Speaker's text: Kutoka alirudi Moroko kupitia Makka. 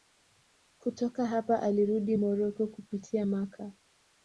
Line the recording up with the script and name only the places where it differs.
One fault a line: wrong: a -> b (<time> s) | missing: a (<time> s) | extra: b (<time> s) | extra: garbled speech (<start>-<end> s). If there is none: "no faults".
extra: hapa (1.2 s)